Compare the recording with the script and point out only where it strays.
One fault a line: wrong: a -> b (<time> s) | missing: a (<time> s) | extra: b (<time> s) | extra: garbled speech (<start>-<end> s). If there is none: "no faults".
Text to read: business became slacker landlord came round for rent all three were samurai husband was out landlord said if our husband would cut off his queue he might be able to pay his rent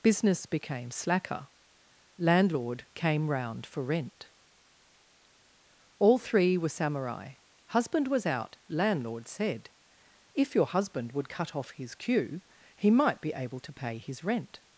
wrong: our -> your (10.5 s)